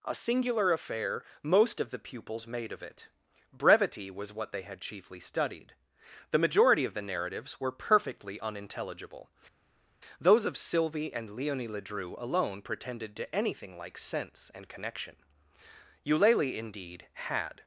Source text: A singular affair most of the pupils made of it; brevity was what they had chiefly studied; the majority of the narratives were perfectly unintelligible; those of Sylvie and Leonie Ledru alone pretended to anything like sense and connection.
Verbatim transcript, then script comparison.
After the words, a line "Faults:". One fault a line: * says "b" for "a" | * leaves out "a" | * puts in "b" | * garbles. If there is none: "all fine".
A singular affair most of the pupils made of it; brevity was what they had chiefly studied; the majority of the narratives were perfectly unintelligible; those of Sylvie and Leonie Ledru alone pretended to anything like sense and connection. Eulalie, indeed, had
Faults:
* puts in "Eulalie indeed had"